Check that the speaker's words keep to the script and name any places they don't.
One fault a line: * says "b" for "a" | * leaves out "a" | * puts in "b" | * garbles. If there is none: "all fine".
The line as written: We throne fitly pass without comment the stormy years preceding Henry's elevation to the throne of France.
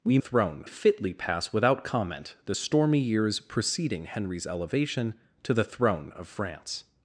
all fine